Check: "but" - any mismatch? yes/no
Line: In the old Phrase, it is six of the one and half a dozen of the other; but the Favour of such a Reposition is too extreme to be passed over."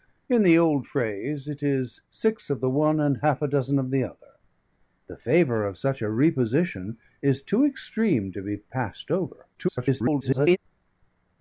yes